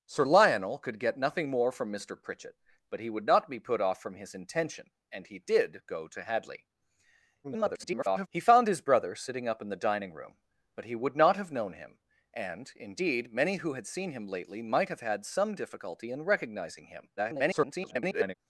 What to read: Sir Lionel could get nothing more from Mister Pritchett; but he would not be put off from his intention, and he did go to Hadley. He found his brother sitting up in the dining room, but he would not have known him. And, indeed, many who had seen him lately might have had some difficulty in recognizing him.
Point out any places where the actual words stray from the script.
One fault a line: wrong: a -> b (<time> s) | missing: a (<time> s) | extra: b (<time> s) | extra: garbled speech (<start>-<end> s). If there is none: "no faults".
extra: garbled speech (7.4-8.3 s)
extra: garbled speech (17.2-18.3 s)